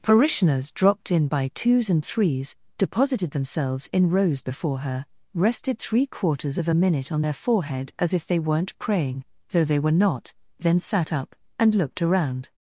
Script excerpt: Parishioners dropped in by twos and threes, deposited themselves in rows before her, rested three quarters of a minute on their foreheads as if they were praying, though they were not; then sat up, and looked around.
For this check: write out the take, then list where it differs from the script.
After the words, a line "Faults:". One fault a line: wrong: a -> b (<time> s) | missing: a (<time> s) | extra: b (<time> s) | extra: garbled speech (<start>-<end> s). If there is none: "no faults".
Parishioners dropped in by twos and threes, deposited themselves in rows before her, rested three quarters of a minute on their forehead as if they weren't praying, though they were not; then sat up, and looked around.
Faults:
wrong: foreheads -> forehead (7.3 s)
wrong: were -> weren't (8.4 s)